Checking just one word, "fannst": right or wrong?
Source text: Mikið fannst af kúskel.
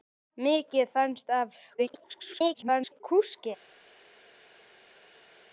right